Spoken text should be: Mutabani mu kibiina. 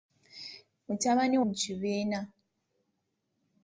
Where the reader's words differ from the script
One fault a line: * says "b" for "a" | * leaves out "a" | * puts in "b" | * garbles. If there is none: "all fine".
all fine